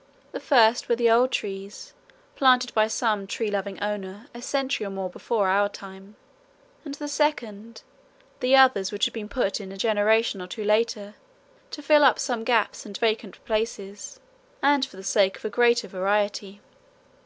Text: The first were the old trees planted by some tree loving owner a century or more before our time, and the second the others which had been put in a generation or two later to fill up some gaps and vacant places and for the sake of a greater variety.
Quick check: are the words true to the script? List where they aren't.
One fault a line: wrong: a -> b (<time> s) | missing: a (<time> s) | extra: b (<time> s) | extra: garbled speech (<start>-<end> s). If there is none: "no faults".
no faults